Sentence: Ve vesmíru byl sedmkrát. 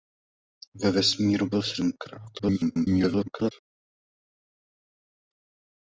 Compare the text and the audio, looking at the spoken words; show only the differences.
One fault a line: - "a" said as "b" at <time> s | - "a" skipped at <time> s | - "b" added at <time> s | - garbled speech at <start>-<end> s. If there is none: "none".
- garbled speech at 2.4-3.5 s